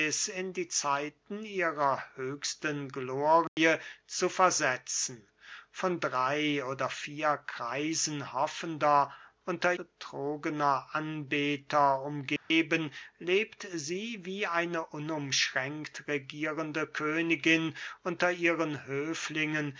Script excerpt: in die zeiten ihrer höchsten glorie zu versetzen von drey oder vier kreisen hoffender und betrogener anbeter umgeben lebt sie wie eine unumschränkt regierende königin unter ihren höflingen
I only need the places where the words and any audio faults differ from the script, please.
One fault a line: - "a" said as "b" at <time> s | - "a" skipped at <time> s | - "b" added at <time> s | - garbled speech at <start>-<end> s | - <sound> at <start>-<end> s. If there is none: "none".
- dropout at 3.5-3.6 s
- "und" said as "unter" at 9.5 s
- dropout at 12.4-12.5 s